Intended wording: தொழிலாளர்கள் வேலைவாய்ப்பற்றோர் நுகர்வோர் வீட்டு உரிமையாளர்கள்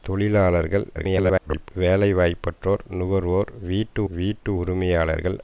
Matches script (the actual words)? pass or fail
fail